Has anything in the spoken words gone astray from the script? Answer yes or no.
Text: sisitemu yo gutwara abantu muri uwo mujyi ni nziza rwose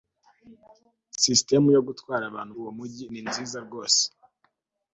yes